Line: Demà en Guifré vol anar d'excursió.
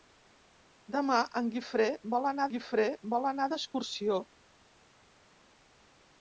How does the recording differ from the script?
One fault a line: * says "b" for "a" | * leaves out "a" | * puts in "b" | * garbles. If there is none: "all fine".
* puts in "Guifré vol anar"